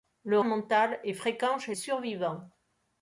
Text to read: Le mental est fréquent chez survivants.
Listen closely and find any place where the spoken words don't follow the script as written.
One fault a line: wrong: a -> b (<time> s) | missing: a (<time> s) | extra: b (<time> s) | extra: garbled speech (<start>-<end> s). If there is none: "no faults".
no faults